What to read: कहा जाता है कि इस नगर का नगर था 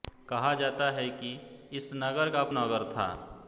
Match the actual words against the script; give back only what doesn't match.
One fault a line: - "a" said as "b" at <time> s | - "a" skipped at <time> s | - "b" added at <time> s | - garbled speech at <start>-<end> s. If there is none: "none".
none